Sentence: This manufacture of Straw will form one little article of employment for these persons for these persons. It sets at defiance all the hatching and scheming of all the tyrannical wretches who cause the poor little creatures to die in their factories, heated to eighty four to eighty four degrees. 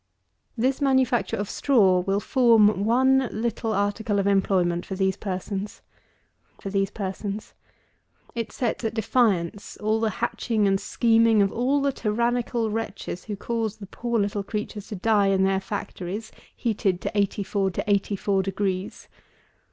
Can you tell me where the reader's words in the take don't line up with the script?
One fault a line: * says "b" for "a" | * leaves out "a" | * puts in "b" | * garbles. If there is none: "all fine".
all fine